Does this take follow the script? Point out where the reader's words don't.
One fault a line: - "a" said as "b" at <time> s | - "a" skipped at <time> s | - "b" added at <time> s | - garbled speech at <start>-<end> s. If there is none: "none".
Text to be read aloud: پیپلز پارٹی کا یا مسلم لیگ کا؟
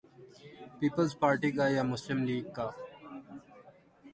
none